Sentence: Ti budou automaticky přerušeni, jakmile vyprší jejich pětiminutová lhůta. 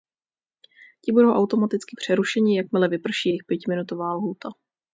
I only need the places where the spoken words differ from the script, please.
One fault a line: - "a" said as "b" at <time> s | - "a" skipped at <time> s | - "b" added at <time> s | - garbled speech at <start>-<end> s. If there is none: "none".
none